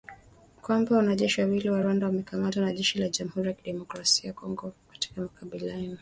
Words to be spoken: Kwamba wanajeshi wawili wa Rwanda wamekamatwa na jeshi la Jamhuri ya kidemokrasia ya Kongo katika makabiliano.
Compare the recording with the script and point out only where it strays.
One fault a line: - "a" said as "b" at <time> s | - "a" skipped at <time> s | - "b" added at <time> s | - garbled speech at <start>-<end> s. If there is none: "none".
none